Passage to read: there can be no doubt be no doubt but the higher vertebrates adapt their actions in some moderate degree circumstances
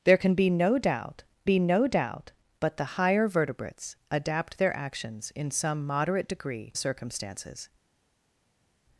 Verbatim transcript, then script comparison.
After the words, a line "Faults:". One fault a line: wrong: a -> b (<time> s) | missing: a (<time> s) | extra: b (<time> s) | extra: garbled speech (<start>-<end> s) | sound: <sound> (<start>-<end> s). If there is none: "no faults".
there can be no doubt be no doubt but the higher vertebrates adapt their actions in some moderate degree circumstances
Faults:
no faults